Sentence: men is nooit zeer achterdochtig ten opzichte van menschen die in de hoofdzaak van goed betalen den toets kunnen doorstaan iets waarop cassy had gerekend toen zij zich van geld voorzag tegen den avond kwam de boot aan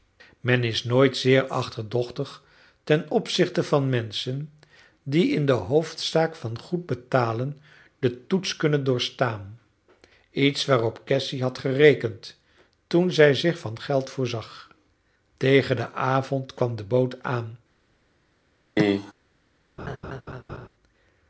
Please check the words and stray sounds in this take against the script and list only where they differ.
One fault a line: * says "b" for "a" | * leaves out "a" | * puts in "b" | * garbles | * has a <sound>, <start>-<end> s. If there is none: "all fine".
* has a cough, 18.8-19.1 s
* has a laugh, 19.8-20.7 s